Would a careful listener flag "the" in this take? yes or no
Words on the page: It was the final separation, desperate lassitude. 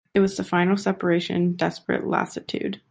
no